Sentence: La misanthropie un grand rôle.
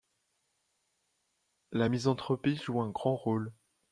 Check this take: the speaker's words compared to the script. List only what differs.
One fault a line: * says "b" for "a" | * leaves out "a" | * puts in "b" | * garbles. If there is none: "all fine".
* puts in "joue"